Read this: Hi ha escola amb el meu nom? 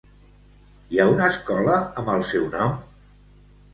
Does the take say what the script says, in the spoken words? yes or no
no